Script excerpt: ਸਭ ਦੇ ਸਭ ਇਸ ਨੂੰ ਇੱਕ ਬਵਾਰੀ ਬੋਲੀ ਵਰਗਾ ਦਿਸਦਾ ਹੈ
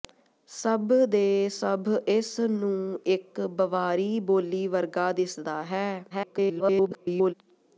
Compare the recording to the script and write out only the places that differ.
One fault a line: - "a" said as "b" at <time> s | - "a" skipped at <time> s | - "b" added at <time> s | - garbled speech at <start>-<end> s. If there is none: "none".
- garbled speech at 6.1-7.3 s